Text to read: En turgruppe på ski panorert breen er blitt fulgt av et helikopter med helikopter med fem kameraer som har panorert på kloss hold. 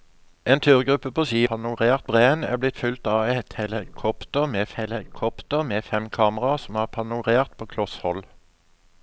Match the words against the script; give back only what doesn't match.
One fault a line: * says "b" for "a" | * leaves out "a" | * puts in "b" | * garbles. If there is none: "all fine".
all fine